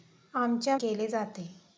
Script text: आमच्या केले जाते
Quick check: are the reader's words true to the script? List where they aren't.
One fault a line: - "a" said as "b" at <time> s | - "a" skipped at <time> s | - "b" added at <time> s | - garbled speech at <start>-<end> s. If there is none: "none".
none